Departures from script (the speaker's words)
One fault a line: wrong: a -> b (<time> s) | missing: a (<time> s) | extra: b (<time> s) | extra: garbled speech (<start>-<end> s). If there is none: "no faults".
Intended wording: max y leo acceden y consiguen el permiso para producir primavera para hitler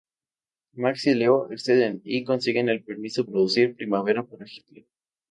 missing: para (3.3 s)